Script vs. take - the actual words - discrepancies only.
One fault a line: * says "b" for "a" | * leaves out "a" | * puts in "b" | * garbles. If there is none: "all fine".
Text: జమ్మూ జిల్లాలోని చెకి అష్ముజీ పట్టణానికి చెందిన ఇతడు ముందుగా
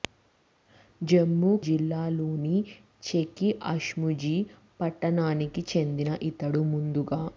all fine